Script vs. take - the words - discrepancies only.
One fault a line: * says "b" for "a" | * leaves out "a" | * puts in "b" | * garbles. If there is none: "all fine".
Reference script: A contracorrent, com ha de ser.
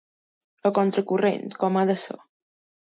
all fine